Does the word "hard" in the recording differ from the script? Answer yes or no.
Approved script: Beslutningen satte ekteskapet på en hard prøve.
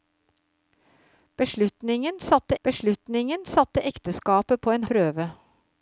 yes